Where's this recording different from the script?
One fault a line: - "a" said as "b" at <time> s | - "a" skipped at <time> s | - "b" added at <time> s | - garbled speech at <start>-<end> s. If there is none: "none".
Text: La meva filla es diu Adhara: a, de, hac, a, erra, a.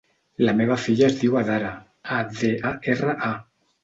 - "hac" skipped at 2.5 s